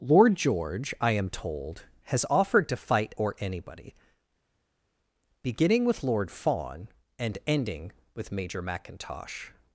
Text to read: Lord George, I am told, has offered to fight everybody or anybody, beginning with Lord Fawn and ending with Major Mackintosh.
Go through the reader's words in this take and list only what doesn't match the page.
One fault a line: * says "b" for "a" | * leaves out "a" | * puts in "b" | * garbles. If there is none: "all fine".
* leaves out "everybody"